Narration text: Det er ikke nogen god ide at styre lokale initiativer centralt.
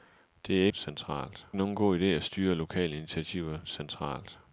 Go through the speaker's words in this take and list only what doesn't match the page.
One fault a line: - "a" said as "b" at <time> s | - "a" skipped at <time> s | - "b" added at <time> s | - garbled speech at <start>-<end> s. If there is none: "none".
- "ikke" said as "centralt" at 0.7 s